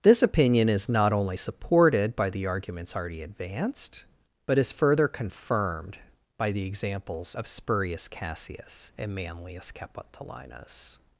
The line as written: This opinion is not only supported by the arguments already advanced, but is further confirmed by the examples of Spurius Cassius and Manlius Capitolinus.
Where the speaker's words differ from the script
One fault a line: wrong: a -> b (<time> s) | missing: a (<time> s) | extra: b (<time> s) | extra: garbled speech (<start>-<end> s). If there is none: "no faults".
no faults